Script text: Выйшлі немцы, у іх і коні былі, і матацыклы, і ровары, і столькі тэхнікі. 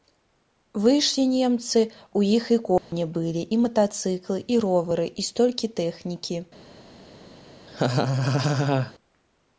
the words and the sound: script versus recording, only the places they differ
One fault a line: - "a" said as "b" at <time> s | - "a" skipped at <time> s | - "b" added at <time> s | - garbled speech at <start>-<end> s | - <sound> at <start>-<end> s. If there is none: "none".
- dropout at 2.8-2.9 s
- laugh at 7.7-8.9 s